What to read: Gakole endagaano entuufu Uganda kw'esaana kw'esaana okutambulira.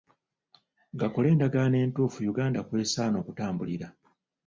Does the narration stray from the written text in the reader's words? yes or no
yes